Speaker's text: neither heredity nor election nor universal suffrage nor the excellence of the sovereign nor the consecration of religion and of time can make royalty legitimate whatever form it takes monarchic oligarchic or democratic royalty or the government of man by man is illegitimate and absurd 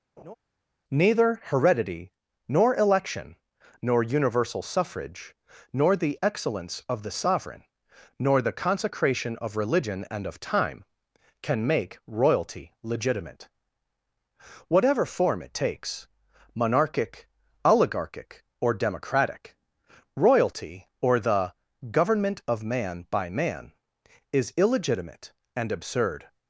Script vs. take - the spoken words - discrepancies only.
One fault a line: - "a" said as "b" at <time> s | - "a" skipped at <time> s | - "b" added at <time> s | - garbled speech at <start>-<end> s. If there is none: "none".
none